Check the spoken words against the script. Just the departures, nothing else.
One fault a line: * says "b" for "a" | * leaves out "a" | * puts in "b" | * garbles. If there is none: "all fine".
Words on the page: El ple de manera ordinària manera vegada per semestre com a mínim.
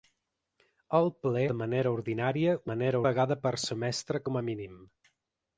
all fine